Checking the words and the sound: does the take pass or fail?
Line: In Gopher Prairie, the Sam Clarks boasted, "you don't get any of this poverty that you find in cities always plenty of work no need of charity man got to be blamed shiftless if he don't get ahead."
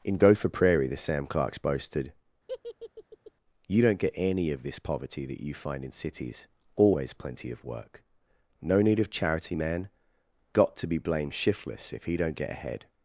fail